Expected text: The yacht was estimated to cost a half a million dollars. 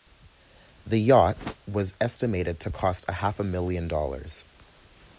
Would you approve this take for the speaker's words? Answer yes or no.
yes